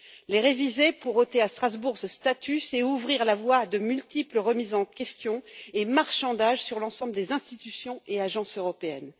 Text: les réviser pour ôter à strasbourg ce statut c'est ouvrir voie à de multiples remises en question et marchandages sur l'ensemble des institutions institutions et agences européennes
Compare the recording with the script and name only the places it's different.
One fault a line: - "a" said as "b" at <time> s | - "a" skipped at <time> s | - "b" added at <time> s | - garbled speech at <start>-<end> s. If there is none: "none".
- "la" added at 3.2 s
- "institutions" skipped at 8.0 s